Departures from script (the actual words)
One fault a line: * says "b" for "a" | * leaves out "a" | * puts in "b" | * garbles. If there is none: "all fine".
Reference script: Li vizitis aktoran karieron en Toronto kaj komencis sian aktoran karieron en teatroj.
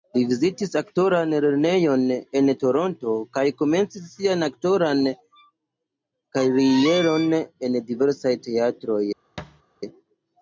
* says "lernejon" for "karieron"
* puts in "diversaj"